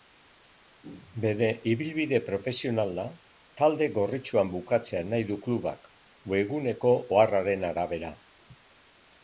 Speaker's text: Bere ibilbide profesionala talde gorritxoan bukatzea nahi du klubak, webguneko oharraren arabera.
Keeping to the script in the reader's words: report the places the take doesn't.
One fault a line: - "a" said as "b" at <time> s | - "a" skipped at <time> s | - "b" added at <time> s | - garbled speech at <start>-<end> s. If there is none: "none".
none